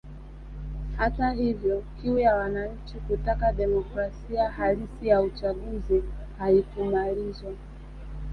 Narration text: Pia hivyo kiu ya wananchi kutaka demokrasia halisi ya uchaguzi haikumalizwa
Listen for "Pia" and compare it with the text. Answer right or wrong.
wrong